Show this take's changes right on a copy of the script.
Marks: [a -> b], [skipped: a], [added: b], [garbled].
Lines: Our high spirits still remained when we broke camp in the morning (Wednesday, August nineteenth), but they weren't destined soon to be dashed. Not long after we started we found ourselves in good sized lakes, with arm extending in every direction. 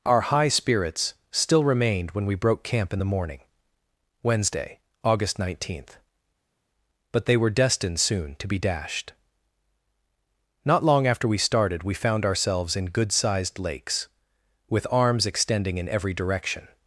Our high spirits still remained when we broke camp in the morning (Wednesday, August nineteenth), but they [weren't -> were] destined soon to be dashed. Not long after we started we found ourselves in good sized lakes, with [arm -> arms] extending in every direction.